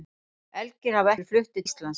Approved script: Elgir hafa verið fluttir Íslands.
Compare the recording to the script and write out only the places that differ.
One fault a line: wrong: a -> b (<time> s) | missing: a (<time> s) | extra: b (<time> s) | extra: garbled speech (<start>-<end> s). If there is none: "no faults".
no faults